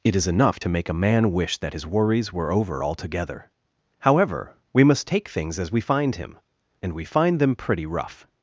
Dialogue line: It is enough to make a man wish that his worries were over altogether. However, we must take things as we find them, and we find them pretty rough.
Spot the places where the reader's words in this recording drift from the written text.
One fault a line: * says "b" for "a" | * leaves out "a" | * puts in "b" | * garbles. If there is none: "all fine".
* says "him" for "them"